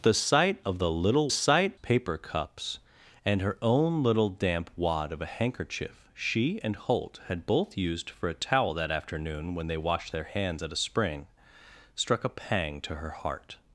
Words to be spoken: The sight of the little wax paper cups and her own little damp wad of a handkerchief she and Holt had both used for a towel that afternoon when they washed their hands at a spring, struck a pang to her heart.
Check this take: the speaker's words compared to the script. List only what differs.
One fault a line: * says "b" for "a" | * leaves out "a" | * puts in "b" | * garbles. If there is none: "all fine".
* says "sight" for "wax"